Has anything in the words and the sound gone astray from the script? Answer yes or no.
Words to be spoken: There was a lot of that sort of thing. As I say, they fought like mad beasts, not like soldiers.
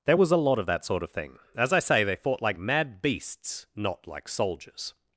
no